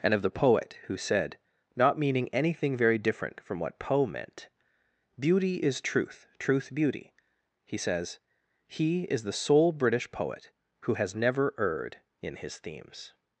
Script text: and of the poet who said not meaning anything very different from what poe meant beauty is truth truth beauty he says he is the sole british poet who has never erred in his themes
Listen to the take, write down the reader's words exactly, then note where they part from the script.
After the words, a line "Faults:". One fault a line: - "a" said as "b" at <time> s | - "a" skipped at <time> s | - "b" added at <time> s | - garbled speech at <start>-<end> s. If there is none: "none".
and of the poet who said not meaning anything very different from what poe meant beauty is truth truth beauty he says he is the sole british poet who has never erred in his themes
Faults:
none